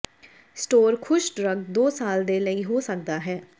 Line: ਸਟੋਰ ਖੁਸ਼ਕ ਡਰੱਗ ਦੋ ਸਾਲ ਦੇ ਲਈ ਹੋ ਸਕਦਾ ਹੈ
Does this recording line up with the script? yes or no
yes